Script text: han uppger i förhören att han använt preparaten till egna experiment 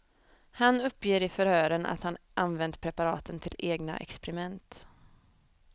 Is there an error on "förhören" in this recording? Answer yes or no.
no